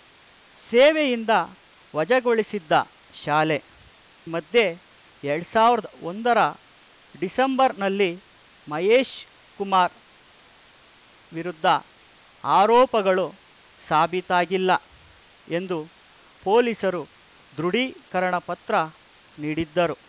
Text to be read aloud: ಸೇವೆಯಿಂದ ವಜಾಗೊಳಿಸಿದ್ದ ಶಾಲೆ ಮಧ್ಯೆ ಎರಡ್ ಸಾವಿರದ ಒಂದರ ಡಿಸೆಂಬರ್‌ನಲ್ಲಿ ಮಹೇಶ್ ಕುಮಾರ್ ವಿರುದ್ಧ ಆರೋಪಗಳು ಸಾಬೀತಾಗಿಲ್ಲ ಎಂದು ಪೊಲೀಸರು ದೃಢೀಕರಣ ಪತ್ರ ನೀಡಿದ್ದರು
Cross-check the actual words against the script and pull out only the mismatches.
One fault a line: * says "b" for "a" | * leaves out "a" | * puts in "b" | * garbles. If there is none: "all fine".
all fine